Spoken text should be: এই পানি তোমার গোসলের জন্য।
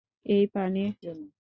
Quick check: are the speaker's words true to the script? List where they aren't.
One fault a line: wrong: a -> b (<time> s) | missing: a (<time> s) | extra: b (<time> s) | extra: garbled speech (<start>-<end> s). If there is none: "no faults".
missing: তোমার গোসলের (0.8 s)